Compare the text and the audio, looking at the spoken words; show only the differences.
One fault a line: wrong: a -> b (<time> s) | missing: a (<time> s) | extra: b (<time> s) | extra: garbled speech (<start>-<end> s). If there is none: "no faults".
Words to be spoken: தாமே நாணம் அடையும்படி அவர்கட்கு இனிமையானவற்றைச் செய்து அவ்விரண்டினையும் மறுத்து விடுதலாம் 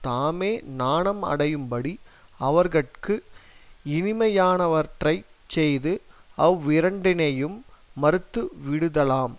no faults